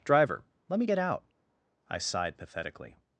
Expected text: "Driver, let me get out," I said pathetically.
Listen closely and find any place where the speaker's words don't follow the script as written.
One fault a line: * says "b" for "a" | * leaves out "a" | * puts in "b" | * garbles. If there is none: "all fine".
* says "sighed" for "said"